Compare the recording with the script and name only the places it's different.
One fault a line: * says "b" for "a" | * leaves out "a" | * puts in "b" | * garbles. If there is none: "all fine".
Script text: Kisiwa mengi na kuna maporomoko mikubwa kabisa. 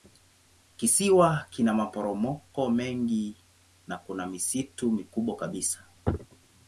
* puts in "kina maporomoko"
* says "misitu" for "maporomoko"